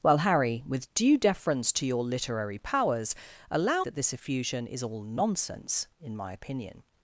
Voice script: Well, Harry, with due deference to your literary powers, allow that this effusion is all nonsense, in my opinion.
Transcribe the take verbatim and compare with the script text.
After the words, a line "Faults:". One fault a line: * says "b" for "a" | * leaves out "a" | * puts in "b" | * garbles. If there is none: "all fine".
Well, Harry, with due deference to your literary powers, allow that this effusion is all nonsense, in my opinion.
Faults:
all fine